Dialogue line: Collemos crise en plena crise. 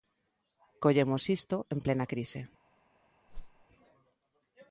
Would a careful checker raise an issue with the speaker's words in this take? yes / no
yes